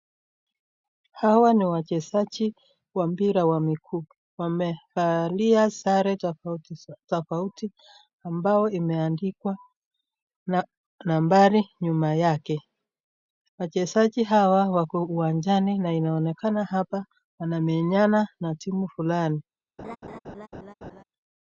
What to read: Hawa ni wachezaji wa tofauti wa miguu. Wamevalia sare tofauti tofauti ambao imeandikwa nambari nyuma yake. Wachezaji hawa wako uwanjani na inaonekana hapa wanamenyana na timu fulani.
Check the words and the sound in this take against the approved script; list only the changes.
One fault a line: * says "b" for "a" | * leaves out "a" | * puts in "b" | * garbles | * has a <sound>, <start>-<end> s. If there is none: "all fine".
* says "mpira" for "tofauti"
* has a laugh, 19.8-21.0 s